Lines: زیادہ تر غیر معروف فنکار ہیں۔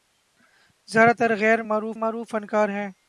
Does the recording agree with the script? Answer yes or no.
no